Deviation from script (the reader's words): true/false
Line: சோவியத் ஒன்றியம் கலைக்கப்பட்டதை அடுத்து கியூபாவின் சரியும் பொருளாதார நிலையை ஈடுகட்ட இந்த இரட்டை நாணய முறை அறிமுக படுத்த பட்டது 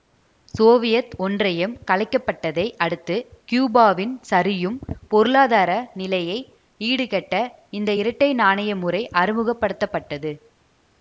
false